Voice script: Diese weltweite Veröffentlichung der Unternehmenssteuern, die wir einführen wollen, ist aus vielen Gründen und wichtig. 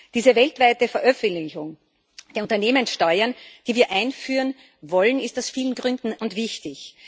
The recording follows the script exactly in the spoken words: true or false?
true